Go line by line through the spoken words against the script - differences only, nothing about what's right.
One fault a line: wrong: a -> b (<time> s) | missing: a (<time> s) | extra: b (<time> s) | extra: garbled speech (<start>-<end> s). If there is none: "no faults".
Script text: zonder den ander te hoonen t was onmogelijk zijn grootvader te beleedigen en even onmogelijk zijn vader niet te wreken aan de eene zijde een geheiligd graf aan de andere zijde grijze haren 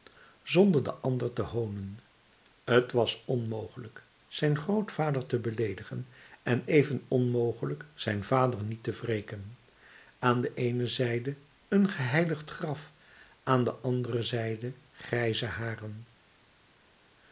no faults